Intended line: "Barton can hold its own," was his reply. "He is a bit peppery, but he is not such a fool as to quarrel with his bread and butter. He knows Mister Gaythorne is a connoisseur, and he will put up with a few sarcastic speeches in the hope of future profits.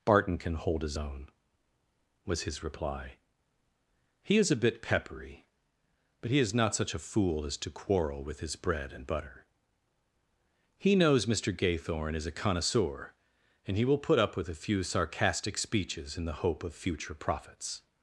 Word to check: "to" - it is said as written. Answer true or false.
true